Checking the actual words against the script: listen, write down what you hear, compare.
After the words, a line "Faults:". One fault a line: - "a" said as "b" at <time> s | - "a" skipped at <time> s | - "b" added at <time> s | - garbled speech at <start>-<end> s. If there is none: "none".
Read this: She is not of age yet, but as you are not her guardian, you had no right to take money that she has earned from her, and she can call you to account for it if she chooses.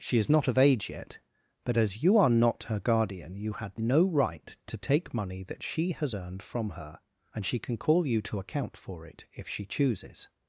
She is not of age yet, but as you are not her guardian, you had no right to take money that she has earned from her, and she can call you to account for it if she chooses.
Faults:
none